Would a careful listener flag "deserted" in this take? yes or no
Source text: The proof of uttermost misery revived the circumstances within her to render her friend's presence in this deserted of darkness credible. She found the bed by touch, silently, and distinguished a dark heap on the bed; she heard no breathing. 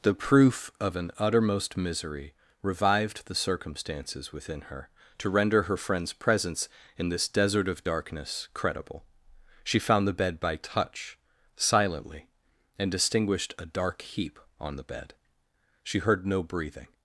yes